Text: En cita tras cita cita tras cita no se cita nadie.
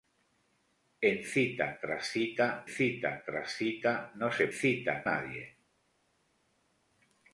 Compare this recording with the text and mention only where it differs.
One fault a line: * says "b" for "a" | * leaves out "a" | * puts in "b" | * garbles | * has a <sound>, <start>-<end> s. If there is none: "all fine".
all fine